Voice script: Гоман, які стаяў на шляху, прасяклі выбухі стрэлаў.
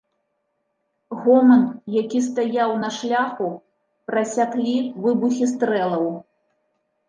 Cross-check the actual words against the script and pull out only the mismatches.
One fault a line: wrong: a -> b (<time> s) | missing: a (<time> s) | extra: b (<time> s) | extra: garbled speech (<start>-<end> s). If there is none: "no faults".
no faults